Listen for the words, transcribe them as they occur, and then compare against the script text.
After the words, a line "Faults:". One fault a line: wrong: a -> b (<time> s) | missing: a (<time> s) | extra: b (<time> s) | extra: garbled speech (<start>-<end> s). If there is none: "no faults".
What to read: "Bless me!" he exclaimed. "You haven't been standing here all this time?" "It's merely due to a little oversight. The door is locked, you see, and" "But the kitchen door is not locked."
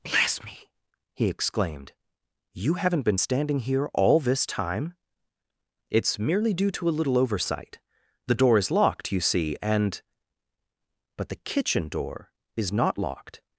"Bless me!" he exclaimed. "You haven't been standing here all this time?" "It's merely due to a little oversight. The door is locked, you see, and" "But the kitchen door is not locked."
Faults:
no faults